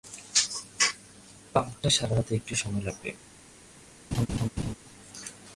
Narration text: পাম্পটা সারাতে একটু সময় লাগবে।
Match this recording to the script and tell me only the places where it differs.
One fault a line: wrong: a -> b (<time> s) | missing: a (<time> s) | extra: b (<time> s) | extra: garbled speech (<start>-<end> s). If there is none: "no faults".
no faults